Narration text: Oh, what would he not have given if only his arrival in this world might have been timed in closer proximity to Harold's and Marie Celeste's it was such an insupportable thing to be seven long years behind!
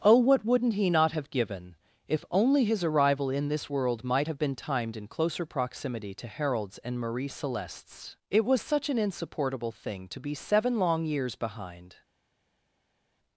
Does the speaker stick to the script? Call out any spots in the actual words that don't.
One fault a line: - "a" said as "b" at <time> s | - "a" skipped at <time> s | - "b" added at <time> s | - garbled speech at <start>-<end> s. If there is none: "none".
- "would" said as "wouldn't" at 0.4 s